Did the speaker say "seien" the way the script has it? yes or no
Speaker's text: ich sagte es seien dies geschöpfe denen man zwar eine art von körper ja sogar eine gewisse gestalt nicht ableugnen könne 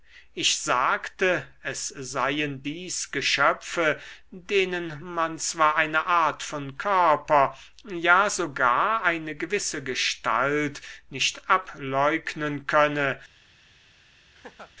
yes